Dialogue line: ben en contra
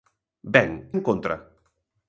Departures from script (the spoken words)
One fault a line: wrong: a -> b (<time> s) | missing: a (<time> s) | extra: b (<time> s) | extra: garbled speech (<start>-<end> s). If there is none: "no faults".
no faults